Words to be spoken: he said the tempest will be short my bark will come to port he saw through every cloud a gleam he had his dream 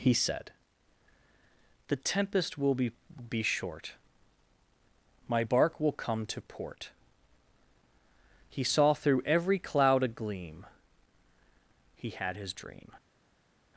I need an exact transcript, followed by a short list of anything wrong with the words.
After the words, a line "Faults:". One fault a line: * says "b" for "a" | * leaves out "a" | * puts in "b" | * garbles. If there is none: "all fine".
he said the tempest will be be short my bark will come to port he saw through every cloud a gleam he had his dream
Faults:
* puts in "be"